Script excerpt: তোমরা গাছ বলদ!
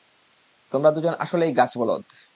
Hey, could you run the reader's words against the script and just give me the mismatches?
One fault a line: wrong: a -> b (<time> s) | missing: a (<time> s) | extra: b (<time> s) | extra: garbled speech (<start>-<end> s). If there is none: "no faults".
extra: দুজন আসলেই (0.9 s)